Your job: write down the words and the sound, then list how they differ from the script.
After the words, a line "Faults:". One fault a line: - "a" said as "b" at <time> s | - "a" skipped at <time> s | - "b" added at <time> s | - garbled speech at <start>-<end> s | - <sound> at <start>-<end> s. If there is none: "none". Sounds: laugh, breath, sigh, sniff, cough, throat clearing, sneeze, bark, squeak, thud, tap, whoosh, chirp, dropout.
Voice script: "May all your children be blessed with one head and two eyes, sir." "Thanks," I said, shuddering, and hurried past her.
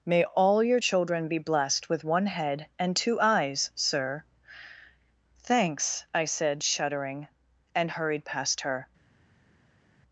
"May all your children be blessed with one head and two eyes, sir." "Thanks," I said, shuddering, and hurried past her.
Faults:
none